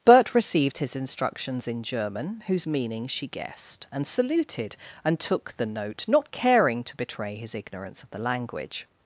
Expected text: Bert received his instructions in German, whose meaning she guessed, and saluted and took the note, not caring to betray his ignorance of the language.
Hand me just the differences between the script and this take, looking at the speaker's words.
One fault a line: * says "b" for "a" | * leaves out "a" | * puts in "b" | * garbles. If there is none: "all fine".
all fine